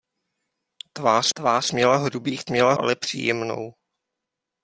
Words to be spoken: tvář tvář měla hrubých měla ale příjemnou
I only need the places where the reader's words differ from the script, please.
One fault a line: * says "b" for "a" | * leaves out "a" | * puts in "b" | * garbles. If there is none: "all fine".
all fine